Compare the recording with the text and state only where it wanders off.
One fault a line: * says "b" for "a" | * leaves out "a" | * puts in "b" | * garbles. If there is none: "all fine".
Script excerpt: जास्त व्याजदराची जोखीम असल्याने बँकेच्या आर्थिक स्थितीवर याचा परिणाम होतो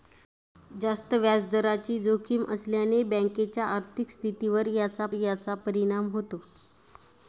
* puts in "याचा"